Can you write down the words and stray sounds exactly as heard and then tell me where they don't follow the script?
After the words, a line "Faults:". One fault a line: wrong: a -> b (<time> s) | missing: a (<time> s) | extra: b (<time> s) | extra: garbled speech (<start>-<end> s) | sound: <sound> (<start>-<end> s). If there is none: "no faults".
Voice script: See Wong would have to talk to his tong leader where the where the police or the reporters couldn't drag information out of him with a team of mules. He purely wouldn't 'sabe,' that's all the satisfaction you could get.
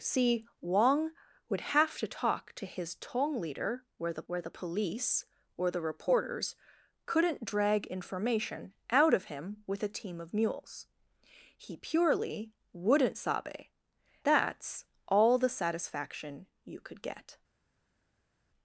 See Wong would have to talk to his tong leader where the where the police or the reporters couldn't drag information out of him with a team of mules. He purely wouldn't 'sabe,' that's all the satisfaction you could get.
Faults:
no faults